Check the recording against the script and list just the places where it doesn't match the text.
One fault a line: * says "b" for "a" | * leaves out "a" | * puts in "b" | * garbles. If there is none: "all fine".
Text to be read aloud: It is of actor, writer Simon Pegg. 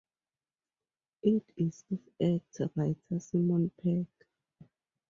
all fine